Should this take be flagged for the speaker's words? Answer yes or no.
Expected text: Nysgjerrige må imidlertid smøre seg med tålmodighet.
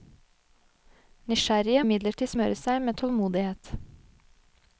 yes